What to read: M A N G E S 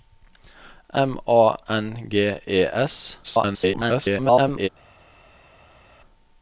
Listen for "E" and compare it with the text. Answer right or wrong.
right